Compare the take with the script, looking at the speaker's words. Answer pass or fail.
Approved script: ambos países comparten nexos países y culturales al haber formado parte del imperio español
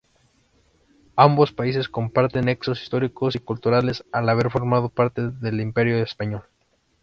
fail